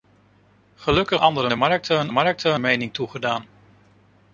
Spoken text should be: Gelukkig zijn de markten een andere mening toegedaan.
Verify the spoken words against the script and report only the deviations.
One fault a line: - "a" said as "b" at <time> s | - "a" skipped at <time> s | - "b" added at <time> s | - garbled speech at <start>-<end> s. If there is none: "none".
- "zijn" said as "andere" at 1.2 s
- "andere" said as "markten" at 2.1 s